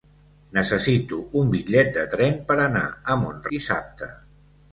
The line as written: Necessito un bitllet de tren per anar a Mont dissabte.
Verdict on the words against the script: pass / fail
pass